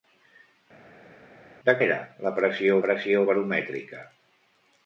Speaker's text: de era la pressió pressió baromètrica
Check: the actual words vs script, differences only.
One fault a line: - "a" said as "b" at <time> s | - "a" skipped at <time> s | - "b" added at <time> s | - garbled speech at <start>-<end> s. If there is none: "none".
none